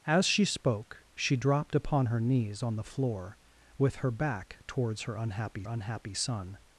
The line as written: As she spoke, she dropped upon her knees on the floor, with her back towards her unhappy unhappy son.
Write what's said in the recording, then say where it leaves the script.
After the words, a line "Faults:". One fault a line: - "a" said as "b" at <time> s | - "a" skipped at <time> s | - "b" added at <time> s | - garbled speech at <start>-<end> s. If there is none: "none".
As she spoke, she dropped upon her knees on the floor, with her back towards her unhappy unhappy son.
Faults:
none